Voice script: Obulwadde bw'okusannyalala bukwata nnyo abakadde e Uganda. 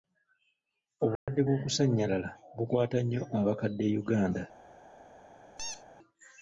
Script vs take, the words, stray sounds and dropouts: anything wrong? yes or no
yes